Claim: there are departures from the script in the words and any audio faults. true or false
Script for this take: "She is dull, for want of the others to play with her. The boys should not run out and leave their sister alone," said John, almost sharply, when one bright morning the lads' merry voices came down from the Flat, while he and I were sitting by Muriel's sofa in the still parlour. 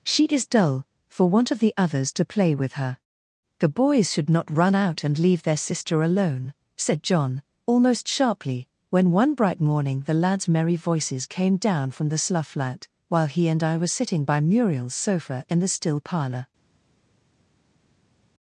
true